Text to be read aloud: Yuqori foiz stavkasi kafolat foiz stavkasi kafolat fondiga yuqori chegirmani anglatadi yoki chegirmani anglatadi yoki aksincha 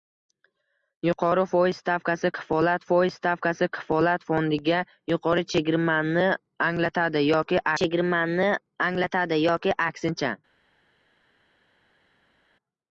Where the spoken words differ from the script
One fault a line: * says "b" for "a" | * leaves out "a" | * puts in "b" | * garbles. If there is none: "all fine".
all fine